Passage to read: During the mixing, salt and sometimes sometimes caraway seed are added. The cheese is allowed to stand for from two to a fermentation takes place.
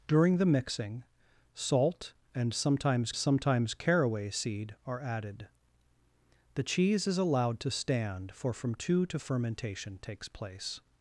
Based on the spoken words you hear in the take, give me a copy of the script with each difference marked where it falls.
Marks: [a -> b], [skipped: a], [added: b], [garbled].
During the mixing, salt and sometimes sometimes caraway seed are added. The cheese is allowed to stand for from two to a fermentation takes place.